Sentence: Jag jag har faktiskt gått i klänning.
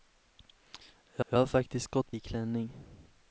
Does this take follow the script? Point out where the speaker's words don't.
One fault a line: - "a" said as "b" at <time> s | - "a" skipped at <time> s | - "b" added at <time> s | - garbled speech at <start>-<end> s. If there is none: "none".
none